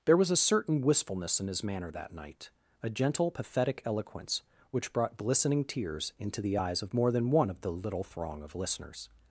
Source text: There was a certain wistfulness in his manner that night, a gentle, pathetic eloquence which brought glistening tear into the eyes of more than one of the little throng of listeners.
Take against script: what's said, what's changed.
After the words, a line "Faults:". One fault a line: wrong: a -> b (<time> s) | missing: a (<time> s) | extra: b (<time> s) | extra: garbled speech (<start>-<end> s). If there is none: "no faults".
There was a certain wistfulness in his manner that night, a gentle, pathetic eloquence which brought glistening tears into the eyes of more than one of the little throng of listeners.
Faults:
wrong: tear -> tears (5.6 s)